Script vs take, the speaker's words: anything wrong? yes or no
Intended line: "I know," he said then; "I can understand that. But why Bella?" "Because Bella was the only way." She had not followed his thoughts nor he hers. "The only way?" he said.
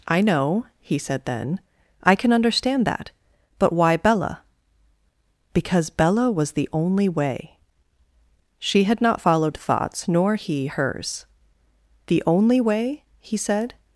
yes